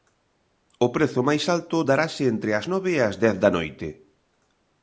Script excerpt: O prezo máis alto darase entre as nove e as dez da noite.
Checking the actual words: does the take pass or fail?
pass